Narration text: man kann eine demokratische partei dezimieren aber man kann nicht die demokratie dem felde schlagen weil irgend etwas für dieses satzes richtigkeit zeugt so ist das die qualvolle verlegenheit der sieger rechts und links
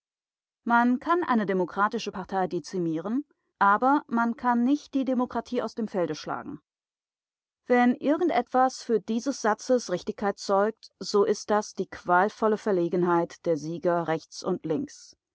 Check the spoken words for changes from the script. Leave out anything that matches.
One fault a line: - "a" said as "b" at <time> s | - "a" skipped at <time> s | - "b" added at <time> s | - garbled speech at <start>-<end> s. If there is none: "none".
- "aus" added at 5.6 s
- "weil" said as "wenn" at 7.7 s